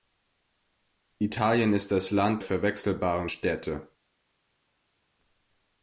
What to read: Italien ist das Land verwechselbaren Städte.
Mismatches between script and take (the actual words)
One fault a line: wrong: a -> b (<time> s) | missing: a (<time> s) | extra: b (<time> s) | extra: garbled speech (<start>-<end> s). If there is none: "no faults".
no faults